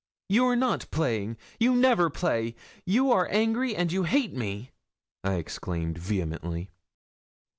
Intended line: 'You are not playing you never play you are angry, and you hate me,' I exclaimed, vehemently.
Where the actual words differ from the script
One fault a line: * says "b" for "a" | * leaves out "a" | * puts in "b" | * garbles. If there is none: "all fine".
all fine